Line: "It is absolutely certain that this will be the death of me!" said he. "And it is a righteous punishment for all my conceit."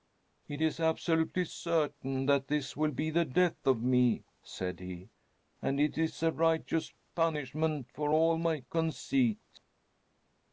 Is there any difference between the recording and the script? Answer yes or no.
no